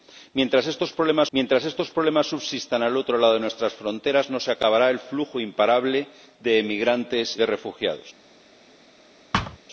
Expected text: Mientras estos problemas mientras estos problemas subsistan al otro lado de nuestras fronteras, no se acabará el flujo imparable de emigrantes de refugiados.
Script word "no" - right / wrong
right